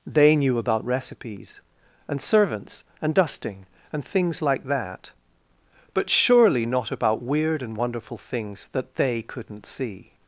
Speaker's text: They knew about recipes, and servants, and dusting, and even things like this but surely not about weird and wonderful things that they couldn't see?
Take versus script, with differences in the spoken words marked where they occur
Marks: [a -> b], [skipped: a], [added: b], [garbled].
They knew about recipes, and servants, and dusting, and [skipped: even] things like [this -> that] but surely not about weird and wonderful things that they couldn't see?